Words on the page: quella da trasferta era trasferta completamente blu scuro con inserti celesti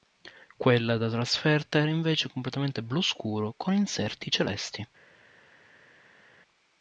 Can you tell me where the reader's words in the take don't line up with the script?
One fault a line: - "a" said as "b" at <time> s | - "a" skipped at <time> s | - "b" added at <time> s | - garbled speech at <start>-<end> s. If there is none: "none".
- "trasferta" said as "invece" at 1.9 s